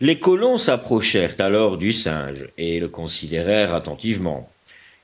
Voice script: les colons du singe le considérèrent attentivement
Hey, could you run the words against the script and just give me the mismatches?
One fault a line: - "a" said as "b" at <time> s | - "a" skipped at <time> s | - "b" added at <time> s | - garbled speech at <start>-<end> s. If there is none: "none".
- "s'approchèrent alors" added at 0.6 s
- "et" added at 2.6 s